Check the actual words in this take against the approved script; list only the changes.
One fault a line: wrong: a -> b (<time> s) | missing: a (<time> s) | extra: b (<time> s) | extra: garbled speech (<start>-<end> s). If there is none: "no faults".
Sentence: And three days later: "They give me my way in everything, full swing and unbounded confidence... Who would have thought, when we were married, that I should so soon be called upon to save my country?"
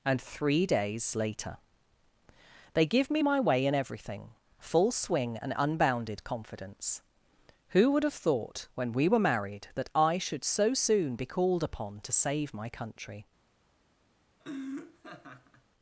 no faults